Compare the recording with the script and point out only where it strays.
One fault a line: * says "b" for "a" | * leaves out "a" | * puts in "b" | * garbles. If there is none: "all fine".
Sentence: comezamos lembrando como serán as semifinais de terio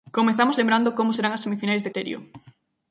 all fine